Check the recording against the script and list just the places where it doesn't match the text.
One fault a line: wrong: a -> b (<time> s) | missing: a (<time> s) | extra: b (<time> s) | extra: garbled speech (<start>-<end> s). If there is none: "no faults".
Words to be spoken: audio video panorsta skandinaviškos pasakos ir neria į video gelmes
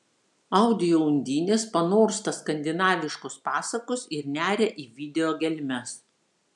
wrong: video -> undinės (1.1 s)